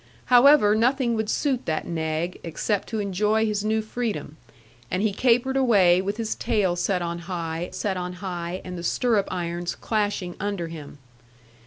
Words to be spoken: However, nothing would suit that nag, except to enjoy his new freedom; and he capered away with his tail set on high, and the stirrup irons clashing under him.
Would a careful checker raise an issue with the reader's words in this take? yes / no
yes